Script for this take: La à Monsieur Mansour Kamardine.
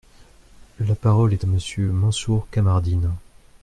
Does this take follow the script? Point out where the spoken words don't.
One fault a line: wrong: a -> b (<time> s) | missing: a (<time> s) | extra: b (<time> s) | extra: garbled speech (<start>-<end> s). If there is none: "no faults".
extra: parole est (0.9 s)